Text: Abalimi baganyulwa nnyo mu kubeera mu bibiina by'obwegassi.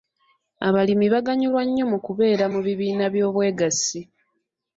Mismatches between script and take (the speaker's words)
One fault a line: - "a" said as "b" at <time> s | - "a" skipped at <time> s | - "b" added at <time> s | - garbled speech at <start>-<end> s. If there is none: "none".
none